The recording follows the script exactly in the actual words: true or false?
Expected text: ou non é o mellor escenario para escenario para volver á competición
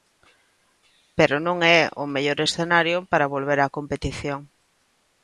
false